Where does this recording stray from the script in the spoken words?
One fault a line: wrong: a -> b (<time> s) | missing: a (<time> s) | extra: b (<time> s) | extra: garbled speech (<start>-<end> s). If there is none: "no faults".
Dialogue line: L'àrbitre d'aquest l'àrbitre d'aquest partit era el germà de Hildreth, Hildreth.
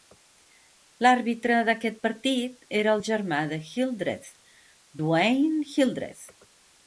missing: l'àrbitre d'aquest (2.0 s)
extra: Dwayne (5.0 s)